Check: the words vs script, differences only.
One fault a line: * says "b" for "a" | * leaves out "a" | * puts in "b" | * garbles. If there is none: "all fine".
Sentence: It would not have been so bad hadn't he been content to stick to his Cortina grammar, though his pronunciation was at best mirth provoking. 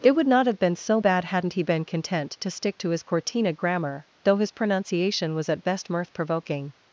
all fine